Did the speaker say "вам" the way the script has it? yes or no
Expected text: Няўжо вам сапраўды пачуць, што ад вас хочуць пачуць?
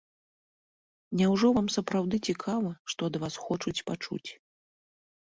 yes